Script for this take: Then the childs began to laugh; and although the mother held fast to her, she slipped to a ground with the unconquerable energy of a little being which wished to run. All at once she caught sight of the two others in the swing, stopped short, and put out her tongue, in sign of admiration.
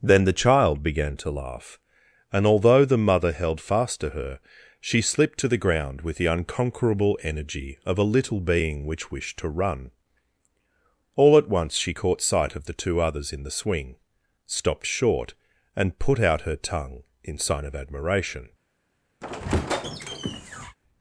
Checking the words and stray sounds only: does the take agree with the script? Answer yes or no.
no